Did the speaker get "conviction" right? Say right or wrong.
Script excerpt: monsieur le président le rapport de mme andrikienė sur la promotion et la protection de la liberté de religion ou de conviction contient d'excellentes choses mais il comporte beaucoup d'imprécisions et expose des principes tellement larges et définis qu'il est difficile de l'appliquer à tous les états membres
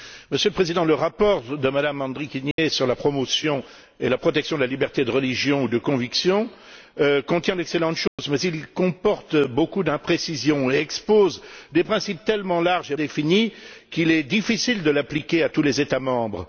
right